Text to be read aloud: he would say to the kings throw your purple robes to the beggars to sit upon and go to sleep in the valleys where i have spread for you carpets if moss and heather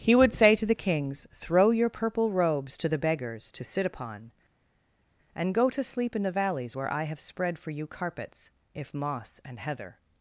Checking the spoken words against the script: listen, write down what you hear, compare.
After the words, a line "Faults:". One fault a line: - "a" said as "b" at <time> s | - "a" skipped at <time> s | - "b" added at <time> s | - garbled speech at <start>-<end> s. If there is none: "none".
he would say to the kings throw your purple robes to the beggars to sit upon and go to sleep in the valleys where i have spread for you carpets if moss and heather
Faults:
none